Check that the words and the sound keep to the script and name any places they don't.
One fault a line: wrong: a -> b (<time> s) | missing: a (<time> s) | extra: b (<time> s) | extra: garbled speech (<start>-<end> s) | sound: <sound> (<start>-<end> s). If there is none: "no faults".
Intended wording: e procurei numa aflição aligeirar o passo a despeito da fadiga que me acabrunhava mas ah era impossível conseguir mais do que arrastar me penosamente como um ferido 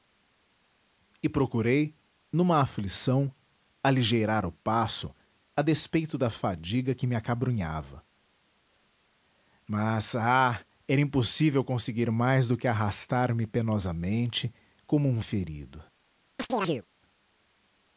sound: chirp (16.4-16.9 s)